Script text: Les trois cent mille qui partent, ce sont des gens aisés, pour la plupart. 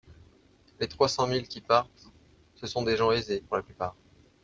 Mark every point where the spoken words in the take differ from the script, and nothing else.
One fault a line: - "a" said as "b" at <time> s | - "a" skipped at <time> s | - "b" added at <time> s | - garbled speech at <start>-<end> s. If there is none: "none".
none